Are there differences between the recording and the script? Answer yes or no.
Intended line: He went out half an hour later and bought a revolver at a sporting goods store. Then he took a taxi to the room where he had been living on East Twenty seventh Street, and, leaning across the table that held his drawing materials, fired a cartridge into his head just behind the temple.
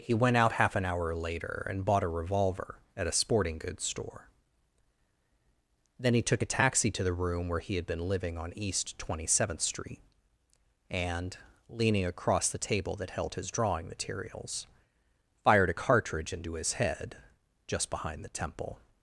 no